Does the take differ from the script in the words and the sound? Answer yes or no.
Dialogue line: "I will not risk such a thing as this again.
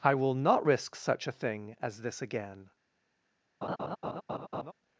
yes